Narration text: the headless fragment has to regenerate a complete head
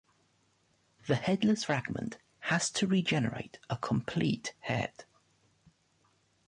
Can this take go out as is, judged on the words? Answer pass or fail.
pass